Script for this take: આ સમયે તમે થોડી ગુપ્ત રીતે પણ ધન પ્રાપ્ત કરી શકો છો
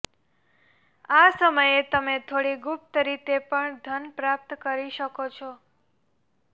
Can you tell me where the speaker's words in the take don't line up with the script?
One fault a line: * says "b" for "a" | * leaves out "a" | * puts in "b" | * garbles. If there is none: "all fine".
all fine